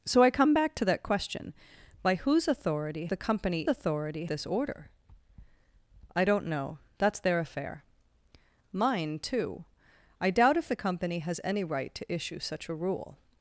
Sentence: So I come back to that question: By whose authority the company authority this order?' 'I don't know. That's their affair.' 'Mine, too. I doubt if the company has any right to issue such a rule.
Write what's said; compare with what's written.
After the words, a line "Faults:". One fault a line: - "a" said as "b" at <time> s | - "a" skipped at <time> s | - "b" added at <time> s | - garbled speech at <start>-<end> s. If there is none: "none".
So I come back to that question: By whose authority the company authority this order?' 'I don't know. That's their affair.' 'Mine, too. I doubt if the company has any right to issue such a rule.
Faults:
none